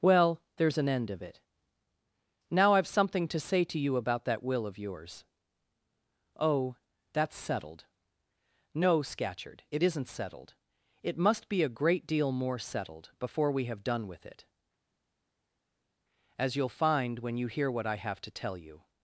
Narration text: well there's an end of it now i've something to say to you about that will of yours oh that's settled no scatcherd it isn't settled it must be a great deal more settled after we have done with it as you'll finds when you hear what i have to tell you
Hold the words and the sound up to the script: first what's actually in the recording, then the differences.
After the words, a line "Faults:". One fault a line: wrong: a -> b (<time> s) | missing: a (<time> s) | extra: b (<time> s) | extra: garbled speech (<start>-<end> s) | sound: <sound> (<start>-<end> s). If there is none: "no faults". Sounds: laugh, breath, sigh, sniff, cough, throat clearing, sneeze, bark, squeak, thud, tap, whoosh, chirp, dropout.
well there's an end of it now i've something to say to you about that will of yours oh that's settled no scatcherd it isn't settled it must be a great deal more settled before we have done with it as you'll find when you hear what i have to tell you
Faults:
wrong: after -> before (13.2 s)
wrong: finds -> find (16.7 s)